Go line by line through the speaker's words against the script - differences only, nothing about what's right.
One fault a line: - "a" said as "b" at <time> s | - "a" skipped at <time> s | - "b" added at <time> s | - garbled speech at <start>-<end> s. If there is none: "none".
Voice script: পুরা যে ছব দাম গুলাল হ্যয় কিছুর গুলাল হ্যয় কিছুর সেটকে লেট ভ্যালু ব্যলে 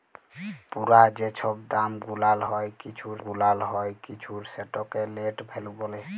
none